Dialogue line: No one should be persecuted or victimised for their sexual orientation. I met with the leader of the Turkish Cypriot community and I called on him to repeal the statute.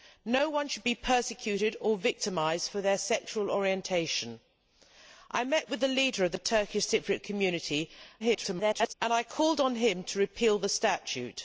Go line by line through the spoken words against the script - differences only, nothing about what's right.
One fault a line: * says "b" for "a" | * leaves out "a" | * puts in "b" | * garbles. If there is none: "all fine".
* garbles